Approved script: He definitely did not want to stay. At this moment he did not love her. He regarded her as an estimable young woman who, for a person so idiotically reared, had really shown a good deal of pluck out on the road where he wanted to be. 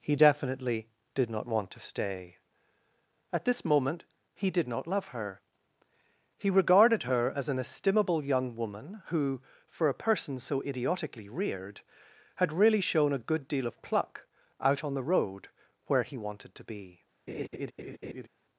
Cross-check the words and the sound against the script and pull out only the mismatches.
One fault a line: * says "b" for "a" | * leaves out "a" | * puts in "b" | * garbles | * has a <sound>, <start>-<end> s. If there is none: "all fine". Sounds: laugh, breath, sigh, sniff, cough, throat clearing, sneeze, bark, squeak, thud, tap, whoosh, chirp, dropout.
* has a laugh, 17.3-18.3 s